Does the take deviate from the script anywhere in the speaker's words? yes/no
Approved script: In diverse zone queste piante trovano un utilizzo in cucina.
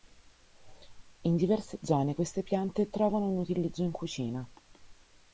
no